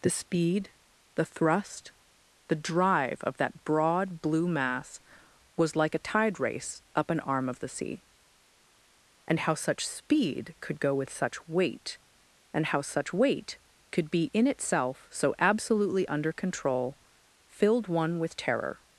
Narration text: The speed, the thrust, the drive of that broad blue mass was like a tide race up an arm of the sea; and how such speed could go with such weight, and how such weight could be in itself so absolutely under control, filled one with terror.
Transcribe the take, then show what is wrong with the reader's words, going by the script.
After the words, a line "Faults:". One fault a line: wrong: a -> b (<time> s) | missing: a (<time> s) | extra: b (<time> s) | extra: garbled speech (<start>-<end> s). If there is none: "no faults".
The speed, the thrust, the drive of that broad blue mass was like a tide race up an arm of the sea; and how such speed could go with such weight, and how such weight could be in itself so absolutely under control, filled one with terror.
Faults:
no faults